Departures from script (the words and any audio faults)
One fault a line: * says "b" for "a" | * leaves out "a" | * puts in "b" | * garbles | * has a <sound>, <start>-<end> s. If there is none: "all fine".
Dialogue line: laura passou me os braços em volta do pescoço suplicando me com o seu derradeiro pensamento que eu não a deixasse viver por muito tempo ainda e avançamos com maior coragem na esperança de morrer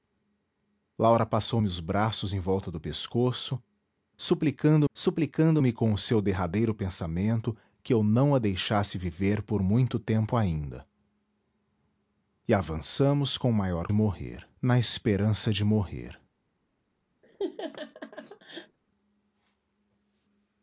* puts in "suplicando"
* says "morrer" for "coragem"
* has a laugh, 17.2-18.8 s